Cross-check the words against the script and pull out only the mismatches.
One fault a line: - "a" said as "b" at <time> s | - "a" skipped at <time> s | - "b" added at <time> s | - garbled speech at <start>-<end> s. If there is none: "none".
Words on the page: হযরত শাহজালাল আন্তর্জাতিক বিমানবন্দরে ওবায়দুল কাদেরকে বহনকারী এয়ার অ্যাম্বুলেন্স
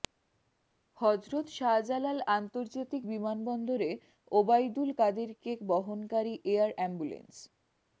none